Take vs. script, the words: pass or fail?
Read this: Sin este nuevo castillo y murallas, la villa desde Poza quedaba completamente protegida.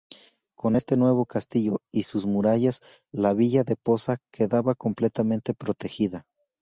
fail